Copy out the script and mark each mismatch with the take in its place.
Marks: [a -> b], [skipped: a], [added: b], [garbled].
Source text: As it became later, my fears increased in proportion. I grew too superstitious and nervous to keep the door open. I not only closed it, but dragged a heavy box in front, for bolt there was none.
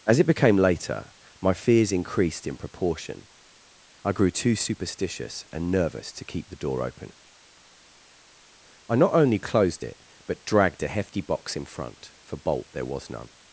As it became later, my fears increased in proportion. I grew too superstitious and nervous to keep the door open. I not only closed it, but dragged a [heavy -> hefty] box in front, for bolt there was none.